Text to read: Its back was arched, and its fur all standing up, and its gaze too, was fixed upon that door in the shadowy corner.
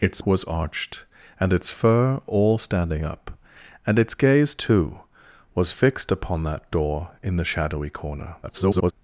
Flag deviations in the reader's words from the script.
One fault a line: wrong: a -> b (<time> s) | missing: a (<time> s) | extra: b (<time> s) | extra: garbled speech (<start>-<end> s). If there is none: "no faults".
missing: back (0.2 s)
extra: garbled speech (8.4-8.9 s)